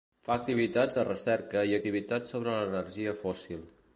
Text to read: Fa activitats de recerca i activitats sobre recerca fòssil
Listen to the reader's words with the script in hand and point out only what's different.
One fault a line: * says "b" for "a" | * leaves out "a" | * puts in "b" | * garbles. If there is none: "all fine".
* says "l'energia" for "recerca"